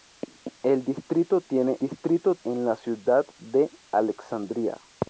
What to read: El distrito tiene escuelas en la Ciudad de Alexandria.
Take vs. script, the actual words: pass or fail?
fail